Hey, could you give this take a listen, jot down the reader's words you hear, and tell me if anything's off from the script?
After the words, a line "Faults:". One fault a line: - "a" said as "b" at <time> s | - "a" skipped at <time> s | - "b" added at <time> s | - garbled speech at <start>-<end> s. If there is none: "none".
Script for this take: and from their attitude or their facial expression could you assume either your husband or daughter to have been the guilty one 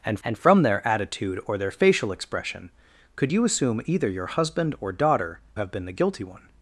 and and from their attitude or their facial expression could you assume either your husband or daughter have been the guilty one
Faults:
- "and" added at 0.2 s
- "to" skipped at 5.4 s